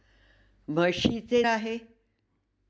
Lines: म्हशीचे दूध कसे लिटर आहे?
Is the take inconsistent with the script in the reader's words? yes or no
yes